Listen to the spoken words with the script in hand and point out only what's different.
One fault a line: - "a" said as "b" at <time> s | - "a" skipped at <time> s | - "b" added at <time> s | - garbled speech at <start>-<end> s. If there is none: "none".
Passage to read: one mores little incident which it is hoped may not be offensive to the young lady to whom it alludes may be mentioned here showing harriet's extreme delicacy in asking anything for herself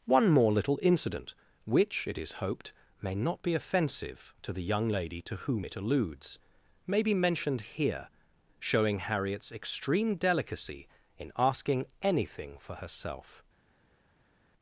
- "mores" said as "more" at 0.3 s